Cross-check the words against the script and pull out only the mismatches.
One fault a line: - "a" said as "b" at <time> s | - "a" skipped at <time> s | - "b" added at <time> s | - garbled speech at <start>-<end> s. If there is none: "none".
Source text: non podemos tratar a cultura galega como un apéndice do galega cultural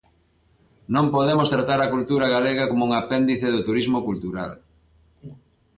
- "galega" said as "turismo" at 3.7 s